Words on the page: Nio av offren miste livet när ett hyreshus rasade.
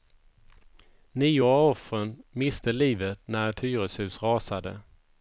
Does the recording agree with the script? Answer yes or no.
yes